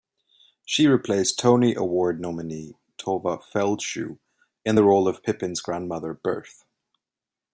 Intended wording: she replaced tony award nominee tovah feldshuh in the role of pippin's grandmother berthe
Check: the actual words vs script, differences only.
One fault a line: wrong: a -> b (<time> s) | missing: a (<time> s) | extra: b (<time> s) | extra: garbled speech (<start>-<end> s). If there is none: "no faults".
no faults